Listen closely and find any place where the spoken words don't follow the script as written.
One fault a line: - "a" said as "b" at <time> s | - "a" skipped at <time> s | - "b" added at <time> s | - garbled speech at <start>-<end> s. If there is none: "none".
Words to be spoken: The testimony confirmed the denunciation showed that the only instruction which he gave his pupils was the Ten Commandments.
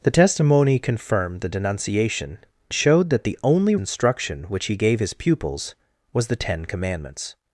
none